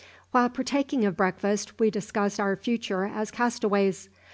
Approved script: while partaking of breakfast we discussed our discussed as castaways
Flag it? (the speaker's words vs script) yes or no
yes